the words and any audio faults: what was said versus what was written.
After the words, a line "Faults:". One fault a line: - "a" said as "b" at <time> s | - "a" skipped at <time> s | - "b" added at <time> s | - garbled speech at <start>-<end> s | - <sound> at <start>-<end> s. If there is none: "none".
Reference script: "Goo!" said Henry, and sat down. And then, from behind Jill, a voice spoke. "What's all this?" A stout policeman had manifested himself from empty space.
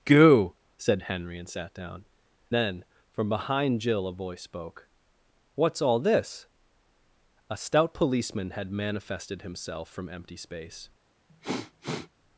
"Goo!" said Henry, and sat down. Then, from behind Jill, a voice spoke. "What's all this?" A stout policeman had manifested himself from empty space.
Faults:
- "And" skipped at 2.0 s
- sniff at 11.3-12.1 s